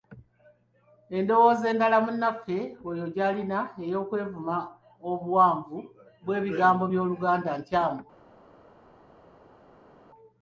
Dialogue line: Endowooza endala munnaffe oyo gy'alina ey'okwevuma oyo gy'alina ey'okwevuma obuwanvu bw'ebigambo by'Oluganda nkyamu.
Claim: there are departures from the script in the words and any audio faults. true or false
true